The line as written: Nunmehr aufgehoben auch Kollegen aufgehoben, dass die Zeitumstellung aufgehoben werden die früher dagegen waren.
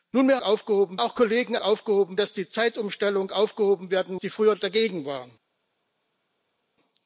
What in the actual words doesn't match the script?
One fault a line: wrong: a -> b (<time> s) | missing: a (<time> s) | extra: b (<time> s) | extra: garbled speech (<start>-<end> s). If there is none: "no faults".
no faults